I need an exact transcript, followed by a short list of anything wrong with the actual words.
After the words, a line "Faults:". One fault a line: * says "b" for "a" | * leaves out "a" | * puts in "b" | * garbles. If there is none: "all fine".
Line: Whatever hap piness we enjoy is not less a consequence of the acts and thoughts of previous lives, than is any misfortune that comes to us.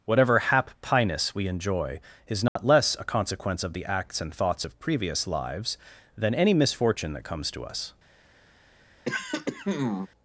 Whatever hap piness we enjoy is not less a consequence of the acts and thoughts of previous lives, than any misfortune that comes to us.
Faults:
* leaves out "is"